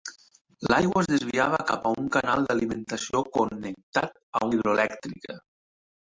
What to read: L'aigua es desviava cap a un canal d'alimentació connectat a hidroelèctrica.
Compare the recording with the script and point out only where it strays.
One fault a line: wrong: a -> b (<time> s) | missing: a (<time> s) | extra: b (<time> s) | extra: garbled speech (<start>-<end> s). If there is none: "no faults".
no faults